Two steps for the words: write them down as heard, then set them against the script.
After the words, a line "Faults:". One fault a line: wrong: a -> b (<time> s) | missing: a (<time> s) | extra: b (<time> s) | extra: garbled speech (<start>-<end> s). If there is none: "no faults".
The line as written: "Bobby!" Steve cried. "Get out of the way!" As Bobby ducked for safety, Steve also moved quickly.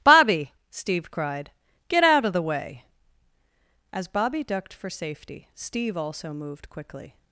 "Bobby!" Steve cried. "Get out of the way!" As Bobby ducked for safety, Steve also moved quickly.
Faults:
no faults